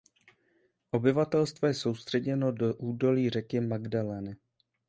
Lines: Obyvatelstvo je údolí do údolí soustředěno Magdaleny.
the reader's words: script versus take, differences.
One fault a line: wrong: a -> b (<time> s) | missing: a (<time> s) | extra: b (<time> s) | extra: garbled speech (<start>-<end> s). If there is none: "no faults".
wrong: údolí -> soustředěno (1.7 s)
wrong: soustředěno -> řeky (3.3 s)